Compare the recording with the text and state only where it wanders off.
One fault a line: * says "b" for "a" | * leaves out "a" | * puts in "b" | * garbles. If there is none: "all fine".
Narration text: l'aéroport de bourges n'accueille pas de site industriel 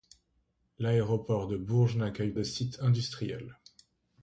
* leaves out "pas"